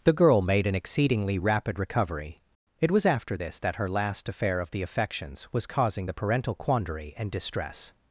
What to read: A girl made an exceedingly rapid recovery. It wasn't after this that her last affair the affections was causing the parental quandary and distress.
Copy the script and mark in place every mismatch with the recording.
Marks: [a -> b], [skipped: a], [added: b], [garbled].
[A -> The] girl made an exceedingly rapid recovery. It [wasn't -> was] after this that her last affair [added: of] the affections was causing the parental quandary and distress.